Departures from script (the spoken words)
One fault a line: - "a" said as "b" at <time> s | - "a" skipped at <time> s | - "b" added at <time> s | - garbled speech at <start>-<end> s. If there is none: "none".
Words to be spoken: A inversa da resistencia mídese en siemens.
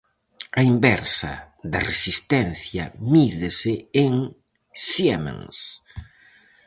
none